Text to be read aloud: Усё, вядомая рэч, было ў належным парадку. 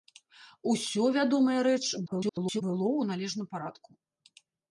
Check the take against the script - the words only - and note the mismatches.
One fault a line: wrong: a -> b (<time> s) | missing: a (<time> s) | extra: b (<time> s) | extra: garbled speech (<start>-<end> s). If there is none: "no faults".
extra: garbled speech (2.1-2.6 s)